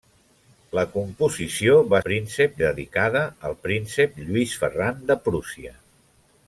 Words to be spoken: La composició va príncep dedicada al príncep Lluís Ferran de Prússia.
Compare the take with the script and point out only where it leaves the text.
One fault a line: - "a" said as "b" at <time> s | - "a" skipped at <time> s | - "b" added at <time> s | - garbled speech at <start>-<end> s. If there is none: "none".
none